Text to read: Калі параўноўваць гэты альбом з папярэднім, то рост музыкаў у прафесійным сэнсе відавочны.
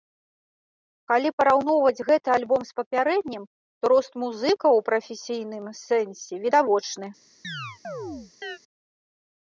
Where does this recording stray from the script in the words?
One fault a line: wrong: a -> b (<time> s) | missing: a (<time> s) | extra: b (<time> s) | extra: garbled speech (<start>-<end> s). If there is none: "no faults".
no faults